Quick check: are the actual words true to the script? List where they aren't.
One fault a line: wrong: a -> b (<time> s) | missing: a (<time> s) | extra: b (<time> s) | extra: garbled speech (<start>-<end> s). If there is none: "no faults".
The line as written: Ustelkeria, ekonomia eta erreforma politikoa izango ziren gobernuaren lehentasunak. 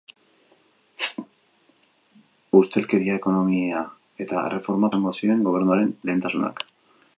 missing: politikoa (4.9 s)